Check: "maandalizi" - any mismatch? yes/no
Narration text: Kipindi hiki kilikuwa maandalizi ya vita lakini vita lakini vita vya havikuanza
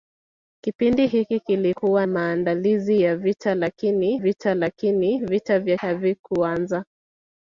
no